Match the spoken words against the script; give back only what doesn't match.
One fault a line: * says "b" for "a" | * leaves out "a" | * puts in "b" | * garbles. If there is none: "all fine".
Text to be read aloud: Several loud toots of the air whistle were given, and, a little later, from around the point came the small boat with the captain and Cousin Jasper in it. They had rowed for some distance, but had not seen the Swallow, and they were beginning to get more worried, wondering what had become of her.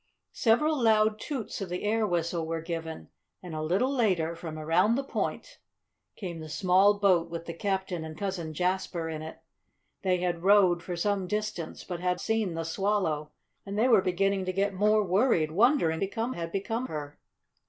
* leaves out "not"
* says "become" for "what"
* leaves out "of"